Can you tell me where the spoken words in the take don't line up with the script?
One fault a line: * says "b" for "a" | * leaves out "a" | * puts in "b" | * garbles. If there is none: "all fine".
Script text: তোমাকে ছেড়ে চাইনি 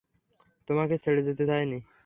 * puts in "যেতে"